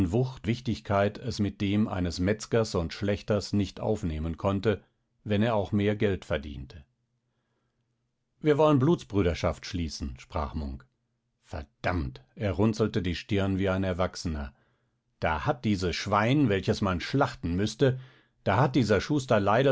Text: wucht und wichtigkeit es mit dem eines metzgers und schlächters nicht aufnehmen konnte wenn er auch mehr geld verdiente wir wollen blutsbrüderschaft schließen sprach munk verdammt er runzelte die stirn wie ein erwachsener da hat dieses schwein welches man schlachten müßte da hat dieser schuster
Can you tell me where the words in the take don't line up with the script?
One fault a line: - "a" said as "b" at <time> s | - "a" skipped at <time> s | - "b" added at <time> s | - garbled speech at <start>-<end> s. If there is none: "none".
- "und" skipped at 0.5 s